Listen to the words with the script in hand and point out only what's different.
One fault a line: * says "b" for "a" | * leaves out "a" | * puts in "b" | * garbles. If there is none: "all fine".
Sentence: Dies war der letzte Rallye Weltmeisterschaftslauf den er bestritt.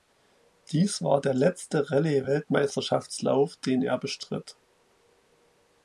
all fine